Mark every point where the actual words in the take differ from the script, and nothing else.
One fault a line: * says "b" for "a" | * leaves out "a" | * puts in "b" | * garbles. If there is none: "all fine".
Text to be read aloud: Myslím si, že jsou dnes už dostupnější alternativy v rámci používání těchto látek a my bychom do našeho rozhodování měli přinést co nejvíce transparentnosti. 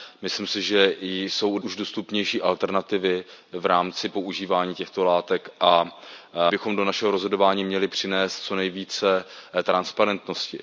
* leaves out "dnes"
* leaves out "my"